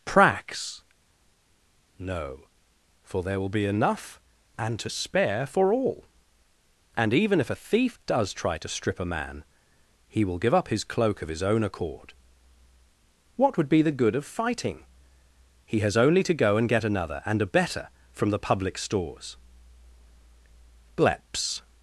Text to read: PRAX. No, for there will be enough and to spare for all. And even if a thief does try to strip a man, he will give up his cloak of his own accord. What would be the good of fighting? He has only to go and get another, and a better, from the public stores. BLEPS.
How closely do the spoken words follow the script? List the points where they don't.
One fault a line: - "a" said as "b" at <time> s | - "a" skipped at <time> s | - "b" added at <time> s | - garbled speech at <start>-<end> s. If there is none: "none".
none